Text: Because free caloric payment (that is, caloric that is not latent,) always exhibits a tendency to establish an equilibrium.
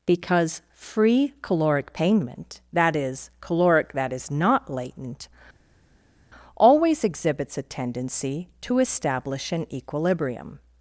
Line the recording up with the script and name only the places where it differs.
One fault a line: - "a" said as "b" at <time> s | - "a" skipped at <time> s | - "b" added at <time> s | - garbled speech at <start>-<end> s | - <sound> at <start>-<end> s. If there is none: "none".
none